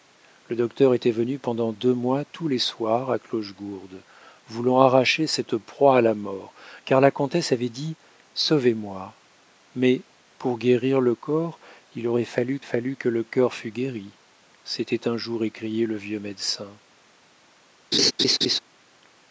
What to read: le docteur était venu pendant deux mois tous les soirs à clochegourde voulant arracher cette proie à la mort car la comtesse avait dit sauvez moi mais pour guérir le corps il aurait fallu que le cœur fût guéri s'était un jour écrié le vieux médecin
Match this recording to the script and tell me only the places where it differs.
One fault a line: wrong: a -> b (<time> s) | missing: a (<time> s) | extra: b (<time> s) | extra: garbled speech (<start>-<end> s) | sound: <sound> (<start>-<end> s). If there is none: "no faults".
extra: fallu (12.6 s)
sound: laugh (17.9-18.6 s)